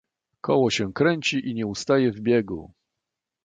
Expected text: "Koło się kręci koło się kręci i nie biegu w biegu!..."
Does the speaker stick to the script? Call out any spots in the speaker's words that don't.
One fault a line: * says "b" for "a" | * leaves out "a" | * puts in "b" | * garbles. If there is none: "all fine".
* leaves out "koło się kręci"
* says "ustaje" for "biegu"